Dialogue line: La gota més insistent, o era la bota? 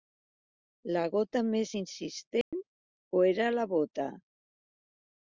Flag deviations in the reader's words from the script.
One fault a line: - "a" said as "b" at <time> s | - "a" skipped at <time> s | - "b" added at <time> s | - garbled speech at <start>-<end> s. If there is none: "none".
none